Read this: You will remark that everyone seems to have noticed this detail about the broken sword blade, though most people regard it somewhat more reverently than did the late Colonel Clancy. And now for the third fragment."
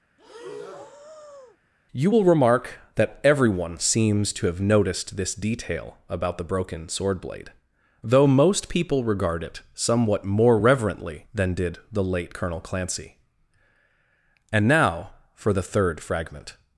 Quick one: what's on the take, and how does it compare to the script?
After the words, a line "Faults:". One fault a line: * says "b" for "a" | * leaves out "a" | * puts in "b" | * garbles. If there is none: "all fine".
You will remark that everyone seems to have noticed this detail about the broken sword blade, though most people regard it somewhat more reverently than did the late Colonel Clancy. And now for the third fragment."
Faults:
all fine